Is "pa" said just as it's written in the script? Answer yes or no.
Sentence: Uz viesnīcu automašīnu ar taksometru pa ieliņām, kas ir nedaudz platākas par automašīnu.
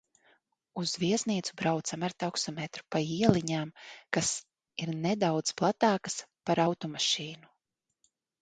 yes